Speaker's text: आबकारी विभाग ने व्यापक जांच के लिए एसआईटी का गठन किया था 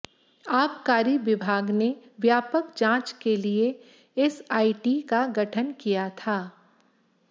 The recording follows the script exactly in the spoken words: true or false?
true